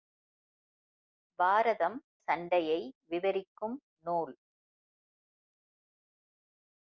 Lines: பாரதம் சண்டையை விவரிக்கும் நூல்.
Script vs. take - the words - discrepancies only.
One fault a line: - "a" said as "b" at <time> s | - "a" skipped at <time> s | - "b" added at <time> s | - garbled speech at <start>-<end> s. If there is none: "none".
none